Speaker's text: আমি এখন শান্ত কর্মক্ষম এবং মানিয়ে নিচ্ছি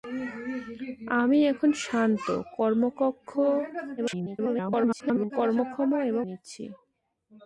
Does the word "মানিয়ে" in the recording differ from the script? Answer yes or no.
yes